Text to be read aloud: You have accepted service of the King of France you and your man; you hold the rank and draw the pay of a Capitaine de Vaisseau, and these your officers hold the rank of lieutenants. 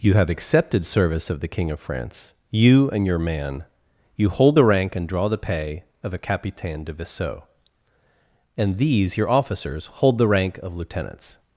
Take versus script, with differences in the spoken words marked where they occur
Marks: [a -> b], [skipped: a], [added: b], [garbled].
You have accepted service of the King of France you and your man; you hold the rank and draw the pay of a Capitaine de Vaisseau, and these your officers hold the rank of lieutenants.